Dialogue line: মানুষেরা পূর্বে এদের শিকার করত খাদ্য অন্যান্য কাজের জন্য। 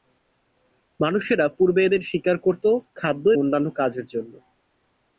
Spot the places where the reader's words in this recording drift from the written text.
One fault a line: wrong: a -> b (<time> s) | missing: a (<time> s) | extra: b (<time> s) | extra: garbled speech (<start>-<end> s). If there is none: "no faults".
no faults